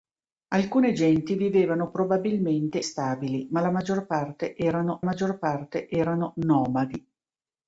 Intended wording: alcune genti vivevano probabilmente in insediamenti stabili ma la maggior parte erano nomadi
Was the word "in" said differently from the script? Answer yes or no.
yes